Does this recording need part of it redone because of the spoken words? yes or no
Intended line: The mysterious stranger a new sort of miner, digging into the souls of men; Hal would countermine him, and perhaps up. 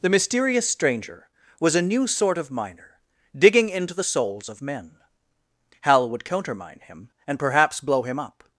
yes